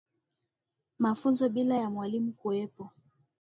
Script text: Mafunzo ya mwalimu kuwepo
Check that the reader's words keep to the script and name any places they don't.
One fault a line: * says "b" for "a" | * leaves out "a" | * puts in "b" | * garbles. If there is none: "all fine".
* puts in "bila"